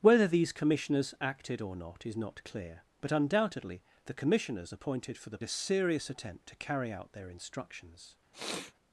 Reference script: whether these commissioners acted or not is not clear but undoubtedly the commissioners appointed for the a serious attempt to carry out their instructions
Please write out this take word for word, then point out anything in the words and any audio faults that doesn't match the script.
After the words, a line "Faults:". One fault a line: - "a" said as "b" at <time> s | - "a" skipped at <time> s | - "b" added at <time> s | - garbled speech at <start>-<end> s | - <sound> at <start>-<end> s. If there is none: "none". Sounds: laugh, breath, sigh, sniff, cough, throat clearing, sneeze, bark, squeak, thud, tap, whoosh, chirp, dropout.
whether these commissioners acted or not is not clear but undoubtedly the commissioners appointed for the a serious attempt to carry out their instructions
Faults:
- sniff at 8.3-8.7 s